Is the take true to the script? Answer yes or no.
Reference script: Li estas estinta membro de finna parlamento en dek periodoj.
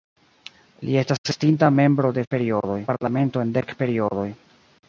no